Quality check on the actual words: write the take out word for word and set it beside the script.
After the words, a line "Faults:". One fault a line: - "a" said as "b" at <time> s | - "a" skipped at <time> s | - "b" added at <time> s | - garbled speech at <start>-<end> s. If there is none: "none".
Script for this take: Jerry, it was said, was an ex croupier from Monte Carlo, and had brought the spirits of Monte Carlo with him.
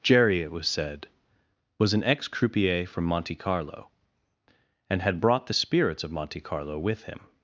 Jerry, it was said, was an ex croupier from Monte Carlo, and had brought the spirits of Monte Carlo with him.
Faults:
none